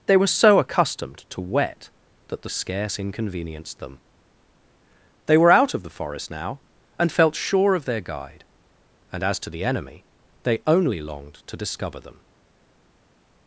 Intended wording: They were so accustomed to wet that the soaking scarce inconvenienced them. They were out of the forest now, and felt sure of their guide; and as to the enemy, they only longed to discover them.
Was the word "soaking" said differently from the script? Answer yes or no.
yes